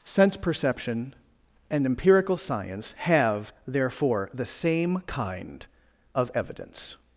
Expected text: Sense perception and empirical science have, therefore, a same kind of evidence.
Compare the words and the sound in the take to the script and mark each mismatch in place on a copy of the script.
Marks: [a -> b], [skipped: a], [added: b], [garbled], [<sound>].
Sense perception and empirical science have, therefore, [a -> the] same kind of evidence.